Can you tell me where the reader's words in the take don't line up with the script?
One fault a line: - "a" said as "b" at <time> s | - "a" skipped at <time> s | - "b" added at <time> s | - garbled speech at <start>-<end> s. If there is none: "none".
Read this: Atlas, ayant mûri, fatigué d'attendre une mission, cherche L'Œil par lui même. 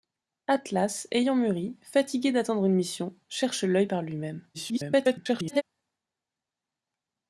- garbled speech at 4.5-5.6 s